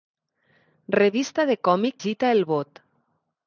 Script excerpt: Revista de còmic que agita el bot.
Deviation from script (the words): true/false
true